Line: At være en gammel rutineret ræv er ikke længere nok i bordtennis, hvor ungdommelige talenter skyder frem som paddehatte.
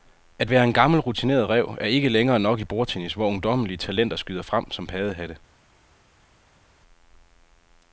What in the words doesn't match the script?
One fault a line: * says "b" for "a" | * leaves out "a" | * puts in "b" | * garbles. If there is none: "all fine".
all fine